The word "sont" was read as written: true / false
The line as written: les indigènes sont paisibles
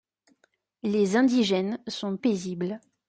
true